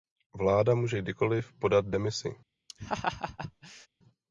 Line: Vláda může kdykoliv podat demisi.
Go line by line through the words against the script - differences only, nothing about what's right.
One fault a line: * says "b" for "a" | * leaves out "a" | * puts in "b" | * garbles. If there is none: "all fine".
all fine